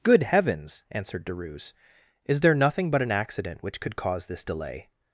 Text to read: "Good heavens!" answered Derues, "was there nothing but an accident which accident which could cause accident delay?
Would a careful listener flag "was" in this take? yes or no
yes